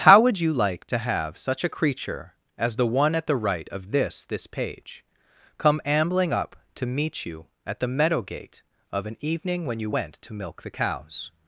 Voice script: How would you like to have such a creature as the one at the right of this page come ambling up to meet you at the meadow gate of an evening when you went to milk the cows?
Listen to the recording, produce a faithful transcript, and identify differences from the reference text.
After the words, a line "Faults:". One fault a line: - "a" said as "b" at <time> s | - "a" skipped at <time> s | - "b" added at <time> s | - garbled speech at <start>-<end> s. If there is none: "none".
How would you like to have such a creature as the one at the right of this this page come ambling up to meet you at the meadow gate of an evening when you went to milk the cows?
Faults:
- "this" added at 4.2 s